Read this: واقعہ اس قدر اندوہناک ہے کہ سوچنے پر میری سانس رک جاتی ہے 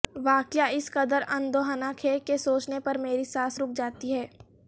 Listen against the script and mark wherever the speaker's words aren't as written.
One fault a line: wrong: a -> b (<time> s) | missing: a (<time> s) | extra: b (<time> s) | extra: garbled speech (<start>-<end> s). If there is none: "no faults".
no faults